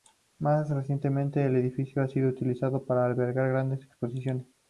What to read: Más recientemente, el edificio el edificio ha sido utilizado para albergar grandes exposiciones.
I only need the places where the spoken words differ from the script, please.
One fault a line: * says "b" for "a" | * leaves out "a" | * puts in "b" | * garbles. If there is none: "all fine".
* leaves out "el edificio"